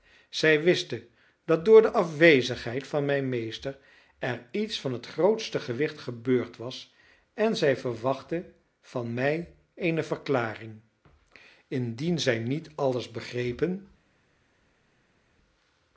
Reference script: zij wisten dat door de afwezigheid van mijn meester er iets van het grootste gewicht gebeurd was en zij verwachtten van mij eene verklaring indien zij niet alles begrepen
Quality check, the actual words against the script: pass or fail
pass